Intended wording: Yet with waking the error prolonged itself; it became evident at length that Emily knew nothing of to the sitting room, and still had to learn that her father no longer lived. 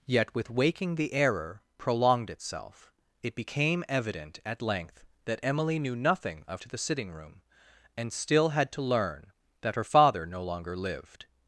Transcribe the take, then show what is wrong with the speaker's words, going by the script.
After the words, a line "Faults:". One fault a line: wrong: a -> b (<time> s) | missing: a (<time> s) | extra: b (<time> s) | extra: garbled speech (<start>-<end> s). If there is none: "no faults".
Yet with waking the error prolonged itself; it became evident at length that Emily knew nothing of to the sitting room, and still had to learn that her father no longer lived.
Faults:
no faults